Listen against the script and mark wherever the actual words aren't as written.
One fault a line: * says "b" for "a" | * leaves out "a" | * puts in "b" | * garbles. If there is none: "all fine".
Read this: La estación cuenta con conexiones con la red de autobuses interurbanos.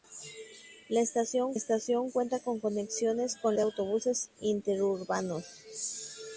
* puts in "estación"
* leaves out "la red"